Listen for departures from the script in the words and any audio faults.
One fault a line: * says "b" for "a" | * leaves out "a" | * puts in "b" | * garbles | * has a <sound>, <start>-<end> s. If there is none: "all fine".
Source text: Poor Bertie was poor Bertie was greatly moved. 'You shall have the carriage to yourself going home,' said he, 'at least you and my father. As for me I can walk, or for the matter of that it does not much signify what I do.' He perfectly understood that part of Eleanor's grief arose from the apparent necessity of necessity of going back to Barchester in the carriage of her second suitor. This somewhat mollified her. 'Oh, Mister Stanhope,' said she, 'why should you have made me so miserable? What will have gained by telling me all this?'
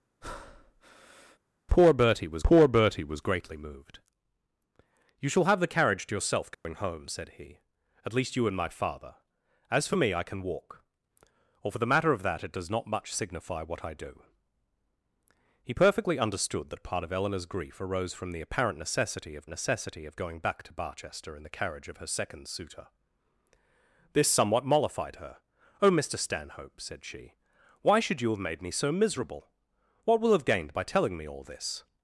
* has a breath, 0.2-1.4 s
* has a dropout, 6.5-6.6 s